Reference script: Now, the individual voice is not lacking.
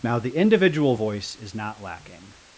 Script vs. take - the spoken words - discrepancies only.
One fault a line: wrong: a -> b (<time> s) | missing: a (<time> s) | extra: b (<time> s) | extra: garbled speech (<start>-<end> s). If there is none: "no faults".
no faults